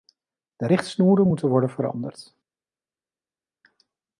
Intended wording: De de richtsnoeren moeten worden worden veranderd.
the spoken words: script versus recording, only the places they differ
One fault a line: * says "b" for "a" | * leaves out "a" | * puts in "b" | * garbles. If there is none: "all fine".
* leaves out "de"
* leaves out "worden"